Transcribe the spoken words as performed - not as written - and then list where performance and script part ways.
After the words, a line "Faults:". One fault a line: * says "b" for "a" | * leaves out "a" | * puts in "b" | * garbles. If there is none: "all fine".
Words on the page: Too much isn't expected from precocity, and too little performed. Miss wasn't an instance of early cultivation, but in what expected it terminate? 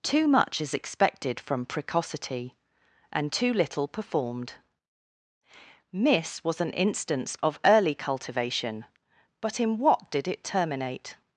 Too much is expected from precocity, and too little performed. Miss was an instance of early cultivation, but in what did it terminate?
Faults:
* says "is" for "isn't"
* says "was" for "wasn't"
* says "did" for "expected"